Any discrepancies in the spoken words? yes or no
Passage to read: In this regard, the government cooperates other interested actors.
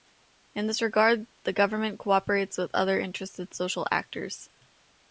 yes